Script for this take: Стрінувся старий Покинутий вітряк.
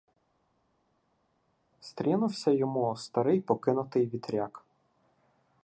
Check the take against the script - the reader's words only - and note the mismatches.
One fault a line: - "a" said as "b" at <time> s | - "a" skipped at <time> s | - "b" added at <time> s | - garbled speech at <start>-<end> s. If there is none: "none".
- "йому" added at 2.5 s